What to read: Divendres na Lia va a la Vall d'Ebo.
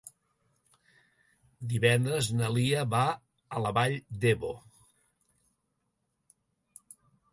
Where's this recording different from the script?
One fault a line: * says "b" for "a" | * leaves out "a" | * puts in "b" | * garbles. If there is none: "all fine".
all fine